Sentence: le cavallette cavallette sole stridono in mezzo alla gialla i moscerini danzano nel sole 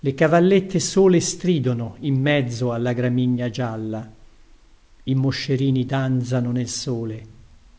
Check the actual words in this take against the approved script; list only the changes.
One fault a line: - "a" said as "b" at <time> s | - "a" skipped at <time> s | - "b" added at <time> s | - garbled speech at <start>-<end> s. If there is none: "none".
- "cavallette" skipped at 0.8 s
- "gramigna" added at 2.9 s